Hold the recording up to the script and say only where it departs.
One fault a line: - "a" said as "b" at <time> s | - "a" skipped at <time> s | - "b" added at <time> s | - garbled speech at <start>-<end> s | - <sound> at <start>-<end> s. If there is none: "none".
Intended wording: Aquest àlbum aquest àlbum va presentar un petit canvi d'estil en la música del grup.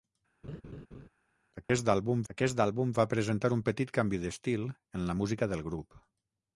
- laugh at 0.4-1.1 s
- dropout at 1.6-1.7 s